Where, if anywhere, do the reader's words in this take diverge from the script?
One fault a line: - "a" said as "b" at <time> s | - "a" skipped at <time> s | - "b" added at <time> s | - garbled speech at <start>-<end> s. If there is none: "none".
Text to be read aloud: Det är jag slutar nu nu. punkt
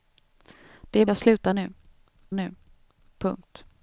none